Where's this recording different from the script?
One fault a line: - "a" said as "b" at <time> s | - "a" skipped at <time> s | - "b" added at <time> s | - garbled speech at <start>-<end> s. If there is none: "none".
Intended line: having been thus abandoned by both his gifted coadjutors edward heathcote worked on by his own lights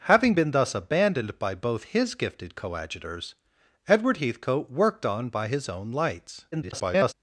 - garbled speech at 6.5-7.1 s